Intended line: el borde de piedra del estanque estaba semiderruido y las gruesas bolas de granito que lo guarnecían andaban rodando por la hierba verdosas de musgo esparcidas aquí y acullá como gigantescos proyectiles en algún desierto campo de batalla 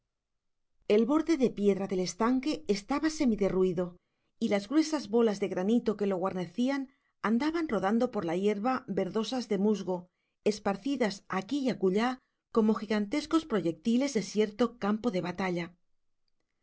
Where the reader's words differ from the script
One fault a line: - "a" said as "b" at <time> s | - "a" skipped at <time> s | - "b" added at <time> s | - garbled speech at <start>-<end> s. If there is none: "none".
- "en algún" skipped at 14.2 s